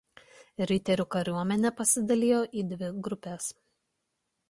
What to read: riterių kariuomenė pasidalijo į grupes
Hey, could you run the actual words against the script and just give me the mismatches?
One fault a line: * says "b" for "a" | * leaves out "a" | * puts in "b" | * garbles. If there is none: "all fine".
* puts in "dvi"